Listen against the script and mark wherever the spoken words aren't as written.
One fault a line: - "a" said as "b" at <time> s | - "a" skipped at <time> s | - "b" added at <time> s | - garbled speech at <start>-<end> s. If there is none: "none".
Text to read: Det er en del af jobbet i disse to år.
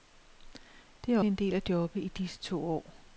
none